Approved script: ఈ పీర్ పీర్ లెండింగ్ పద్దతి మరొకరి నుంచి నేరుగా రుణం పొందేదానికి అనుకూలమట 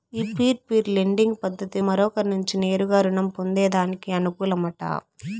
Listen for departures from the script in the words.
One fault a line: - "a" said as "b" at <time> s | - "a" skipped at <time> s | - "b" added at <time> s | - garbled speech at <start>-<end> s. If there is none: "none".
none